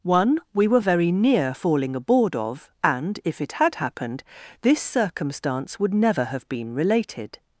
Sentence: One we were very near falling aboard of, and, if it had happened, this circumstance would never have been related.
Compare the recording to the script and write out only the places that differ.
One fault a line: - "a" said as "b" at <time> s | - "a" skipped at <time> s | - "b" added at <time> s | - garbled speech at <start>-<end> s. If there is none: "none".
none